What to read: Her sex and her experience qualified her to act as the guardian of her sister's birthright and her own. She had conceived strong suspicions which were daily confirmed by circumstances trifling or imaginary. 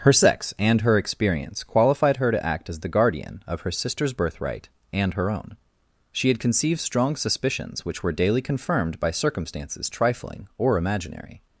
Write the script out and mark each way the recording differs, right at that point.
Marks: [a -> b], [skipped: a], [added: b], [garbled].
Her sex and her experience qualified her to act as the guardian of her sister's birthright and her own. She had conceived strong suspicions which were daily confirmed by circumstances trifling or imaginary.